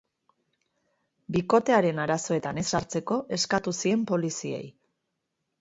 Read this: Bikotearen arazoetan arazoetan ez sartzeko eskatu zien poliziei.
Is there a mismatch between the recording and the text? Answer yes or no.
yes